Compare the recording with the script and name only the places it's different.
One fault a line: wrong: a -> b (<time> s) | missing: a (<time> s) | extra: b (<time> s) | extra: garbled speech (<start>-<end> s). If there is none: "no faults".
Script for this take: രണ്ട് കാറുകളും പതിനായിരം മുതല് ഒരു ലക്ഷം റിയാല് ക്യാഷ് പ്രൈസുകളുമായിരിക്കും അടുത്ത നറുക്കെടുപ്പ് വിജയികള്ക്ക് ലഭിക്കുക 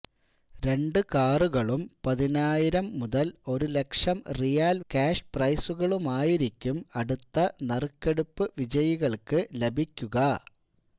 no faults